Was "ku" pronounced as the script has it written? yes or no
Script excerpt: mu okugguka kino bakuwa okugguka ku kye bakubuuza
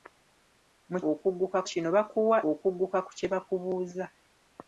yes